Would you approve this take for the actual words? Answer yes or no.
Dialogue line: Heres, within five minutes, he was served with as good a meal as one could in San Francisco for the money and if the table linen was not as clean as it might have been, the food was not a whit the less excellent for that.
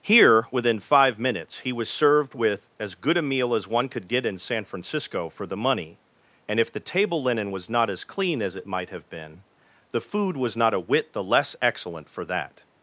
no